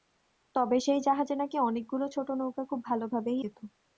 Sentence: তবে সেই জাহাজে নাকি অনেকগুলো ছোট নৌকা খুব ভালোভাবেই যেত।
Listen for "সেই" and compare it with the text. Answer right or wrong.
right